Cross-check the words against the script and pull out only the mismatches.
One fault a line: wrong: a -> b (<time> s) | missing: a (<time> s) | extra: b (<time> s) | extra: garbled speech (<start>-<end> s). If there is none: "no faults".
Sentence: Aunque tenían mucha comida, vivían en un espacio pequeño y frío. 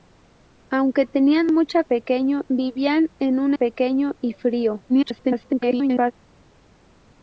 wrong: comida -> pequeño (1.8 s)
missing: espacio (3.5 s)
extra: garbled speech (4.9-6.1 s)